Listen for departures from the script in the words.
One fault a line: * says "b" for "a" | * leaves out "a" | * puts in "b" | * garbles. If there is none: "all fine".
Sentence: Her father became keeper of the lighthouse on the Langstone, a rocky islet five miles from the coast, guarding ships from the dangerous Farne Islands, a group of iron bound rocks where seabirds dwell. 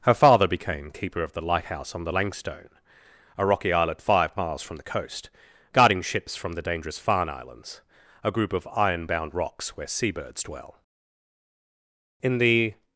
* puts in "In the"